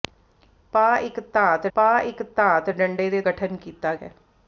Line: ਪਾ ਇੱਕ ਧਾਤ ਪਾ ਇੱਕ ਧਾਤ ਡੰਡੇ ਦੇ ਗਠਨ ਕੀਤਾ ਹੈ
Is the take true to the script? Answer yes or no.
yes